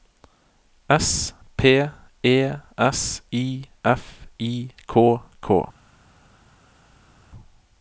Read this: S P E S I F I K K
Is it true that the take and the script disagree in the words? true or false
false